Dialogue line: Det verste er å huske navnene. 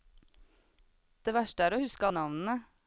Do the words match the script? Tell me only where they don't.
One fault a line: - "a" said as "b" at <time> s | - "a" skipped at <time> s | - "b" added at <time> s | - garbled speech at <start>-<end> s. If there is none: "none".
none